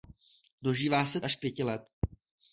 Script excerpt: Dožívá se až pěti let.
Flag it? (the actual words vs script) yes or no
no